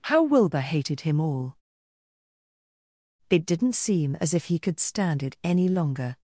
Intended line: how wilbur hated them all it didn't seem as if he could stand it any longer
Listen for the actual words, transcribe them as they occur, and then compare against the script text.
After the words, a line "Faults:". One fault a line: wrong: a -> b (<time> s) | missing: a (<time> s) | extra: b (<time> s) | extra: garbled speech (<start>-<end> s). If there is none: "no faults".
how wilbur hated him all it didn't seem as if he could stand it any longer
Faults:
wrong: them -> him (1.0 s)